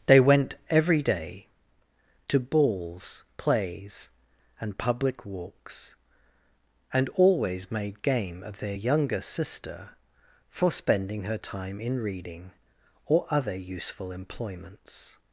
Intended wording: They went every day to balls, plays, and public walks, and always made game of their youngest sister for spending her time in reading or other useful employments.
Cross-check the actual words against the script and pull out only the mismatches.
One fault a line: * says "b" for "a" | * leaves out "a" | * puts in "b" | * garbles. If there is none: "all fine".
* says "younger" for "youngest"